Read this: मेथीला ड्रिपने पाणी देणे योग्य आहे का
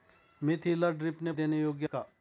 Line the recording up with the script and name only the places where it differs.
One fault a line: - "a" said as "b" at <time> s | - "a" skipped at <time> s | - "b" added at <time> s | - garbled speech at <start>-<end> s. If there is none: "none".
- "पाणी" skipped at 1.3 s
- "आहे" skipped at 1.9 s